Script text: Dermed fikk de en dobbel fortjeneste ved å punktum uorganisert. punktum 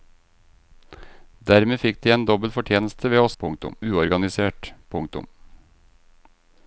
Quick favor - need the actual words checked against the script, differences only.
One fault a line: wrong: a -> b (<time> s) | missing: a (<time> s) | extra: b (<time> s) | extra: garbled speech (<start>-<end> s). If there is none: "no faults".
no faults